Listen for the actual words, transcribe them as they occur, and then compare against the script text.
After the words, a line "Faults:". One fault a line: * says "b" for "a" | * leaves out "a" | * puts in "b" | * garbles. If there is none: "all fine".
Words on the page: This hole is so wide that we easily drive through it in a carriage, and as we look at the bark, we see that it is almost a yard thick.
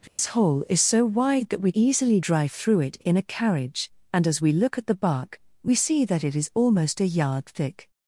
This hole is so wide that we easily drive through it in a carriage, and as we look at the bark, we see that it is almost a yard thick.
Faults:
all fine